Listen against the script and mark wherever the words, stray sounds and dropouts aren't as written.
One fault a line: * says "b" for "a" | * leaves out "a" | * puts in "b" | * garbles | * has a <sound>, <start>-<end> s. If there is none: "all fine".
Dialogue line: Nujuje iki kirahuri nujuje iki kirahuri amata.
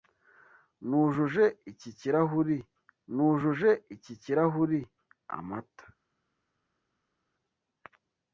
all fine